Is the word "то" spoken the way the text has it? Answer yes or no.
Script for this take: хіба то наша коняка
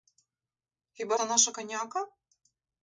yes